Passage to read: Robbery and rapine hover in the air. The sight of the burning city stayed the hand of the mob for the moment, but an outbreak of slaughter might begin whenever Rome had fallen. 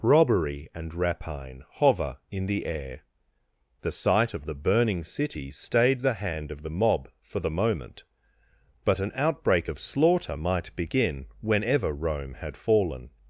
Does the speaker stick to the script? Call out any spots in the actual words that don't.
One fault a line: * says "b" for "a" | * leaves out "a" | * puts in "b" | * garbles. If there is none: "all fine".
all fine